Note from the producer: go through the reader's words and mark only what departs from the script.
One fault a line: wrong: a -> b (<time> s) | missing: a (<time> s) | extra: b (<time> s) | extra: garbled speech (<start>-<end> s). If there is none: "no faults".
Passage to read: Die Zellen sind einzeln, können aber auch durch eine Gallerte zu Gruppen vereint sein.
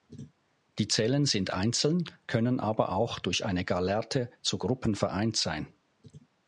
no faults